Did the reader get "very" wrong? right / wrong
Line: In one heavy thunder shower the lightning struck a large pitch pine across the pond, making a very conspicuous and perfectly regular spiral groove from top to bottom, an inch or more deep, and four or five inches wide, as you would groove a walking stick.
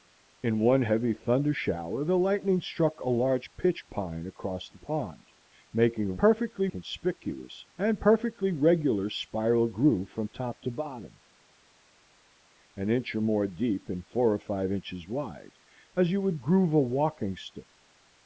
wrong